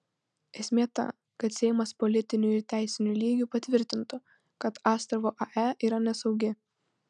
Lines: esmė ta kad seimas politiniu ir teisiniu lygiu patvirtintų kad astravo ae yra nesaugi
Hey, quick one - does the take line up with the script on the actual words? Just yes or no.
yes